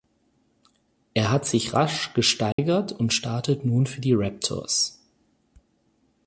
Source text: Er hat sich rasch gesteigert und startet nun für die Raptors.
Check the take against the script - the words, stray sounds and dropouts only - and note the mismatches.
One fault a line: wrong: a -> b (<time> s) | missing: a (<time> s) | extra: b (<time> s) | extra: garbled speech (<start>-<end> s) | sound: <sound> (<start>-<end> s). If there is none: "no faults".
sound: dropout (2.5-2.6 s)